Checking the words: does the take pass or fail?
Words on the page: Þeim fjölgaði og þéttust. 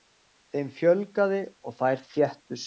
fail